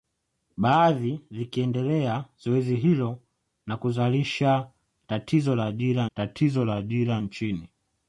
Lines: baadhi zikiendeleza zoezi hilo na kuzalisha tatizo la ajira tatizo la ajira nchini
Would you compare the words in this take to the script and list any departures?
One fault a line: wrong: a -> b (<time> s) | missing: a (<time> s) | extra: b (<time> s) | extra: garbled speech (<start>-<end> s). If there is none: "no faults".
no faults